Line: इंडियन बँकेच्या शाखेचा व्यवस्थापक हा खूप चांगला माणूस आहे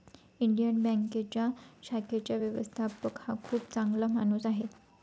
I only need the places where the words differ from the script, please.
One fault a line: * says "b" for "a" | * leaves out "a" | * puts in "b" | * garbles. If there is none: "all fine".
all fine